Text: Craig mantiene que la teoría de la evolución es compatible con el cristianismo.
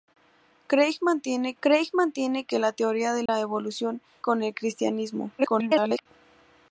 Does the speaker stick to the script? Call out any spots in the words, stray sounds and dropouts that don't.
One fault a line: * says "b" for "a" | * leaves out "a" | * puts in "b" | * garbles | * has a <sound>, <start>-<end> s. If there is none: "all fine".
* puts in "craig mantiene"
* has a dropout, 3.3-3.3 s
* leaves out "es compatible"
* garbles